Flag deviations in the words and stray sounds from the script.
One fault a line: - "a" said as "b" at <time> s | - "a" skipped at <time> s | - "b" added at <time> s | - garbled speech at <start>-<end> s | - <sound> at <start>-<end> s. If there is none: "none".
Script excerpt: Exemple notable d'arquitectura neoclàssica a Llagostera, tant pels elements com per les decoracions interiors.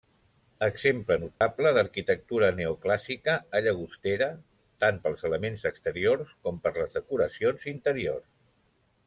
- dropout at 1.3-1.4 s
- "exteriors" added at 5.7 s